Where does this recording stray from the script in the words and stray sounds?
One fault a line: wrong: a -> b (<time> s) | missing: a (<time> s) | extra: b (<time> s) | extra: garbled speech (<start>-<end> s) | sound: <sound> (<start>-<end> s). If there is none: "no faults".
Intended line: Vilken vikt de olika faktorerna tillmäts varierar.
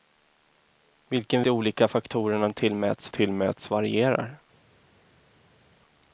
missing: vikt (1.4 s)
extra: tillmäts (3.1 s)